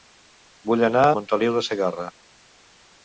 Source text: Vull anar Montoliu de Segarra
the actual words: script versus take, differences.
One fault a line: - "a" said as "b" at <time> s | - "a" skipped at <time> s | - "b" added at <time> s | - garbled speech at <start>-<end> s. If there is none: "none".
none